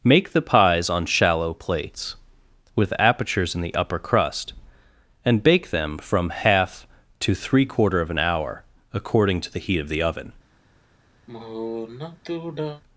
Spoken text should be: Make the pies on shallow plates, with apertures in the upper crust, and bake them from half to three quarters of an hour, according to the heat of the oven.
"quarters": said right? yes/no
no